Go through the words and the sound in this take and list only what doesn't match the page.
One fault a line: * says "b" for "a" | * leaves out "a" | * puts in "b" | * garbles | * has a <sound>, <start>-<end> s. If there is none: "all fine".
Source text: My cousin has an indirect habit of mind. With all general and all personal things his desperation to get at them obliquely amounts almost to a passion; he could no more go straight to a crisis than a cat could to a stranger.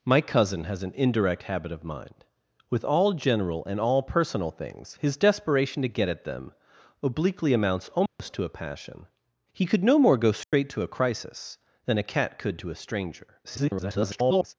* has a dropout, 8.1-8.2 s
* has a dropout, 10.4-10.5 s
* garbles